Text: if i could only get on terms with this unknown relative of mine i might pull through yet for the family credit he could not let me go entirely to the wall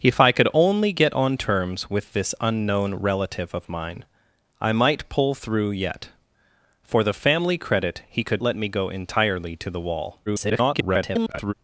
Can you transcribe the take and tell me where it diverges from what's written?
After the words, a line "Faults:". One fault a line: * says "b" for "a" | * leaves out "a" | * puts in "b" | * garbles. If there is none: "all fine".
if i could only get on terms with this unknown relative of mine i might pull through yet for the family credit he could let me go entirely to the wall [garbled]
Faults:
* leaves out "not"
* garbles